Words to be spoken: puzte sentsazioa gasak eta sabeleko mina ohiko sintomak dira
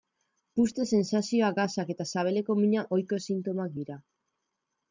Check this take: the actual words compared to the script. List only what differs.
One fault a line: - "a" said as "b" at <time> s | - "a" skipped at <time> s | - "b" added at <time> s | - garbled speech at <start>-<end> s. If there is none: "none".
none